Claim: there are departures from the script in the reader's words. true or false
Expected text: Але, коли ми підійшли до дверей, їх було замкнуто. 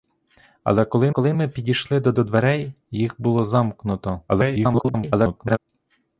true